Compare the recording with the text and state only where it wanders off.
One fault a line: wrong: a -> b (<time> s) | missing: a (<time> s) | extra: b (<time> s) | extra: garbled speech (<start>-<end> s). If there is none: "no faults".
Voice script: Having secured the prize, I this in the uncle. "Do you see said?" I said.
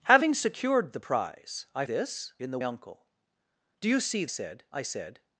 no faults